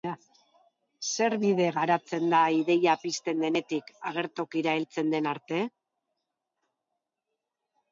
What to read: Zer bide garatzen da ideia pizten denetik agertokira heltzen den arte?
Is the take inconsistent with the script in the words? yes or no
no